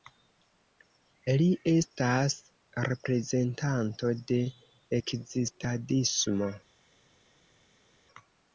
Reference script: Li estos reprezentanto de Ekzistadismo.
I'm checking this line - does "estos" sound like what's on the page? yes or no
no